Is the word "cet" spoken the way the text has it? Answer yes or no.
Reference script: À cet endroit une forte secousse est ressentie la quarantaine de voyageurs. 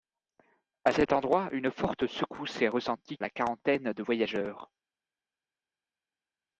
yes